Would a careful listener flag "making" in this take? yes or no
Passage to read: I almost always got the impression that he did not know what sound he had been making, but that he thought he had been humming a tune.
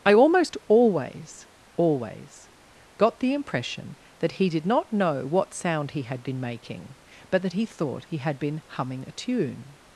no